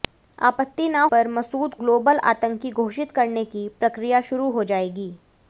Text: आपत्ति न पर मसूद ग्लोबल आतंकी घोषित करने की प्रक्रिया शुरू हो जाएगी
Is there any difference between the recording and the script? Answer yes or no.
no